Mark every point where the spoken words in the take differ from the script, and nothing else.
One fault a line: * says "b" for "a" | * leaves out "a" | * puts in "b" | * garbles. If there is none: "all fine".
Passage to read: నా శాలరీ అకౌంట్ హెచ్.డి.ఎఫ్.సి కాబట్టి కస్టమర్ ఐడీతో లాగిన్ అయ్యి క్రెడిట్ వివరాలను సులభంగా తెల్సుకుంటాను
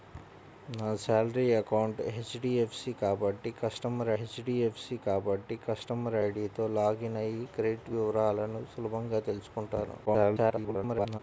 * puts in "హెచ్.డి.ఎఫ్.సి కాబట్టి కస్టమర్"
* garbles